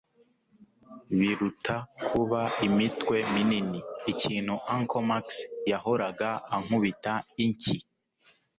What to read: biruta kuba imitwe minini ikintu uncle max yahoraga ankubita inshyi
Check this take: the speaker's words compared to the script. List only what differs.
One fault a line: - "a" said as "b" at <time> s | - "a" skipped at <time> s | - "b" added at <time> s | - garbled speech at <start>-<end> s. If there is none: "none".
none